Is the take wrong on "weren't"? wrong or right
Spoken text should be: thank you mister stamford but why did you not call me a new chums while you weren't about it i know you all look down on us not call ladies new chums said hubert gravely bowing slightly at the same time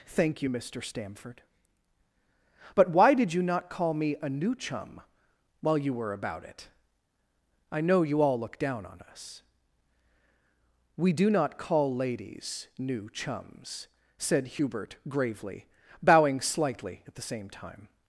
wrong